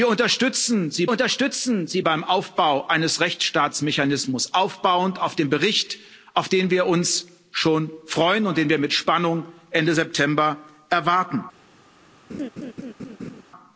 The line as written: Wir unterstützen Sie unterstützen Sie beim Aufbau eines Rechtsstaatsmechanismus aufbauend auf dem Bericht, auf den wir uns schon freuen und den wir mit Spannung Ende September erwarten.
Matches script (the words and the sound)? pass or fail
fail